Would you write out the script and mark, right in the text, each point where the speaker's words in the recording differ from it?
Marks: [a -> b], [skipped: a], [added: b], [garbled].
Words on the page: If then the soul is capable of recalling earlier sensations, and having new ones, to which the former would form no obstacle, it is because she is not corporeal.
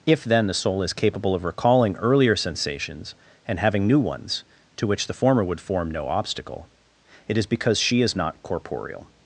If then the soul is capable of recalling earlier sensations, and having new ones, to which the former would form no obstacle, it is because she is not corporeal.